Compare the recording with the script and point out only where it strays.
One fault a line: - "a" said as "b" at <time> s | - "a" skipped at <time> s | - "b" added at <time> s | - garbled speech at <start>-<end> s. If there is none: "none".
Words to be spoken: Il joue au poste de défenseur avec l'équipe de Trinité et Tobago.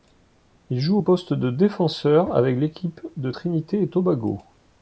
none